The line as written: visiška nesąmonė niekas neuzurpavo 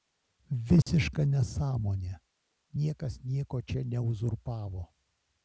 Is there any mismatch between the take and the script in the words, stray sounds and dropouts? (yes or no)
yes